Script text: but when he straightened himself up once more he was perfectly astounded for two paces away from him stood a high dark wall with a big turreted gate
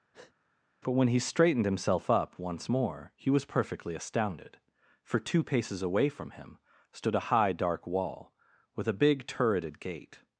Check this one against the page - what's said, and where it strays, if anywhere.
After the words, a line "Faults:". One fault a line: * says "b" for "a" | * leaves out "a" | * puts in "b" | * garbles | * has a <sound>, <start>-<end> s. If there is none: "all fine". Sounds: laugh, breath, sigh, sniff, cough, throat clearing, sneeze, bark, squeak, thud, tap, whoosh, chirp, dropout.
but when he straightened himself up once more he was perfectly astounded for two paces away from him stood a high dark wall with a big turreted gate
Faults:
* has a breath, 0.1-0.3 s